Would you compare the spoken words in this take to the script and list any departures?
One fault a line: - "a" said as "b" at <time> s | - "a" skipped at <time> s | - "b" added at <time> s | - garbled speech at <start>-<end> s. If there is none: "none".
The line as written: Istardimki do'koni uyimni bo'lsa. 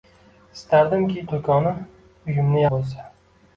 none